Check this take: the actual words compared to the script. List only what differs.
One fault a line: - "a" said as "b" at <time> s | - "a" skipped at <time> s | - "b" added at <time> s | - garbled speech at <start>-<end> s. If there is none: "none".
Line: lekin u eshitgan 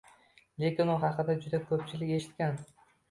- "haqida juda ko'pchilik" added at 1.0 s